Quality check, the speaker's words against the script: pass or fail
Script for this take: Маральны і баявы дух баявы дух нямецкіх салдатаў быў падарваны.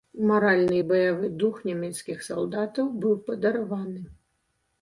fail